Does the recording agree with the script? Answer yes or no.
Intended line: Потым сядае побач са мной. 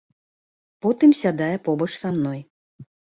yes